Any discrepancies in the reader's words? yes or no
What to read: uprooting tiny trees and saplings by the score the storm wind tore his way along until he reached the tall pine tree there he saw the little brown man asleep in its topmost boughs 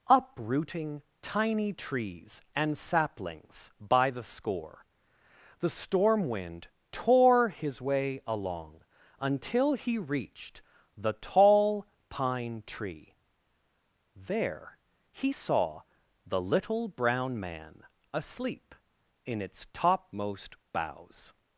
no